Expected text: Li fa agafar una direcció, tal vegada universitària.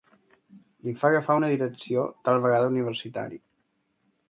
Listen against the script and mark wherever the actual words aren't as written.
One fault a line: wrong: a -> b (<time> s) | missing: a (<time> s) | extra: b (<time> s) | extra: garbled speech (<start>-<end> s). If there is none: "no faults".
no faults